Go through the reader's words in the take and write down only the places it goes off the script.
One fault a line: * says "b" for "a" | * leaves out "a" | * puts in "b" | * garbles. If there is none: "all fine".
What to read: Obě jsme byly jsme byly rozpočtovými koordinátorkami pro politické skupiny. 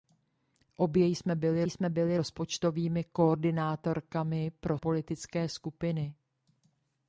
all fine